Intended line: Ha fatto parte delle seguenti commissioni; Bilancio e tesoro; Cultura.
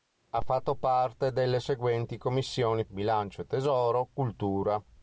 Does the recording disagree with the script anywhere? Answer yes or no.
no